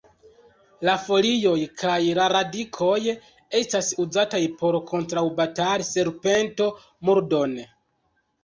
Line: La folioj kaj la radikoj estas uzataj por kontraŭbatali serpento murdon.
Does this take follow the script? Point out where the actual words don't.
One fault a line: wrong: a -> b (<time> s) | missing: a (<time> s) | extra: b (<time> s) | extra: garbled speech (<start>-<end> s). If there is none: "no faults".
no faults